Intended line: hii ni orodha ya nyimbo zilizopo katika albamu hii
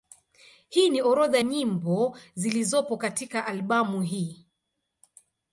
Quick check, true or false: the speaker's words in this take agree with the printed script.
false